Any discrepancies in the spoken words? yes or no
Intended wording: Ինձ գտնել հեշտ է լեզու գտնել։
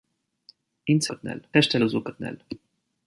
no